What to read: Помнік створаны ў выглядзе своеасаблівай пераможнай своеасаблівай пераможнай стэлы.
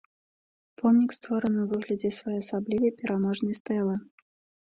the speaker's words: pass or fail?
fail